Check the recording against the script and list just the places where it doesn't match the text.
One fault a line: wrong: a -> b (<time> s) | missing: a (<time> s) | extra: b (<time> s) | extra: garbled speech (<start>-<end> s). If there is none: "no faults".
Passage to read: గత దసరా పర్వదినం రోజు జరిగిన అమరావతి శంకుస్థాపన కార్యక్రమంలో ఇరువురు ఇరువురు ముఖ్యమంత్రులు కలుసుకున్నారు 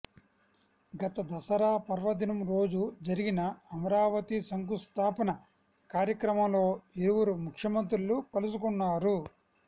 missing: ఇరువురు (7.3 s)